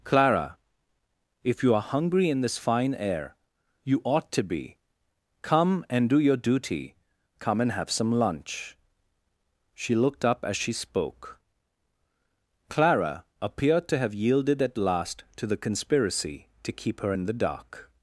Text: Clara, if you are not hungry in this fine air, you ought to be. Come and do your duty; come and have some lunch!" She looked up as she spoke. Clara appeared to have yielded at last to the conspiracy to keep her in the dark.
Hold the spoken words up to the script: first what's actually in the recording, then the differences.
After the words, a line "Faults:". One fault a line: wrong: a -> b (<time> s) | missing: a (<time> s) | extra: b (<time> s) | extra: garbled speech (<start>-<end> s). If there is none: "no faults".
Clara, if you are hungry in this fine air, you ought to be. Come and do your duty; come and have some lunch!" She looked up as she spoke. Clara appeared to have yielded at last to the conspiracy to keep her in the dark.
Faults:
missing: not (1.8 s)